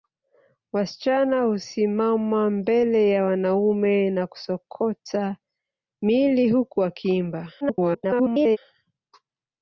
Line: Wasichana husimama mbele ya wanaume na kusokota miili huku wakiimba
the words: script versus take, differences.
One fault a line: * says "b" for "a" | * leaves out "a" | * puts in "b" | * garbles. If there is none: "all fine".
* garbles